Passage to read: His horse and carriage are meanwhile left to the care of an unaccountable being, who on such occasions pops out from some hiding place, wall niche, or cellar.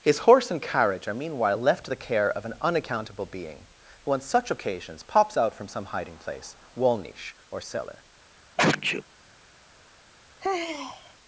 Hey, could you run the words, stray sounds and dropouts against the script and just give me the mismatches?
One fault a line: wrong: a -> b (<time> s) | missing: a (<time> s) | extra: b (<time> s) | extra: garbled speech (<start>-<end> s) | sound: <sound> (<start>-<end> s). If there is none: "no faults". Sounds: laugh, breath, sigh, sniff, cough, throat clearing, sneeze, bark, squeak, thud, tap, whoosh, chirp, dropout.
sound: sneeze (8.6-9.0 s)
sound: sigh (10.4-11.2 s)